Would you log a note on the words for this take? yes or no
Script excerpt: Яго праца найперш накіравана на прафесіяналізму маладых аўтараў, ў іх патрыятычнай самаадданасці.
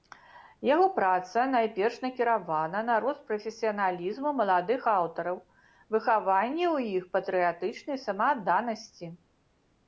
yes